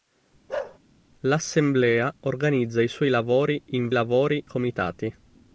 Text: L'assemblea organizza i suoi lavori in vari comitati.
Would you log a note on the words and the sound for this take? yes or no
yes